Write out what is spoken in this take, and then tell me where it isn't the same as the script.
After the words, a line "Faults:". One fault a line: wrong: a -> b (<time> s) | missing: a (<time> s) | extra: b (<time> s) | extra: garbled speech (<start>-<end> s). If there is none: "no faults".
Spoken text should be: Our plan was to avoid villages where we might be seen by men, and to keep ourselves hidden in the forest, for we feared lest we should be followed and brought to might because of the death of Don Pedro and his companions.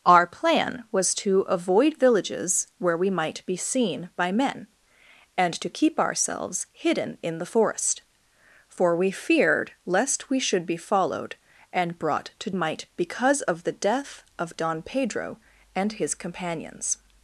Our plan was to avoid villages where we might be seen by men, and to keep ourselves hidden in the forest, for we feared lest we should be followed and brought to might because of the death of Don Pedro and his companions.
Faults:
no faults